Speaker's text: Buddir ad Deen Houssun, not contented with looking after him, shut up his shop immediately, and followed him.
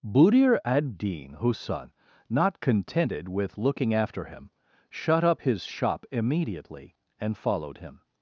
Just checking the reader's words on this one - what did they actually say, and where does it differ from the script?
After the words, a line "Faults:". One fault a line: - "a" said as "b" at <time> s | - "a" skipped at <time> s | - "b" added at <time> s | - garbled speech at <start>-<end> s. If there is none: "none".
Buddir ad Deen Houssun, not contented with looking after him, shut up his shop immediately, and followed him.
Faults:
none